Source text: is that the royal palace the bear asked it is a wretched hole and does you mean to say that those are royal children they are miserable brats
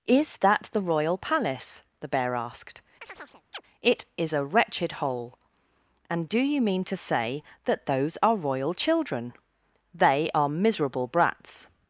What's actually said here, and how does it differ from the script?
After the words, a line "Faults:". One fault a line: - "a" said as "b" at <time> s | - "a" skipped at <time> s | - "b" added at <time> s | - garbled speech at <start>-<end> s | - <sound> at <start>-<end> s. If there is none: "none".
is that the royal palace the bear asked it is a wretched hole and do you mean to say that those are royal children they are miserable brats
Faults:
- chirp at 3.0-3.6 s
- "does" said as "do" at 6.3 s